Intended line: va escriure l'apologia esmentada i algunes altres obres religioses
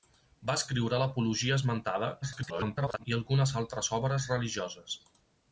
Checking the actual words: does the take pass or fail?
fail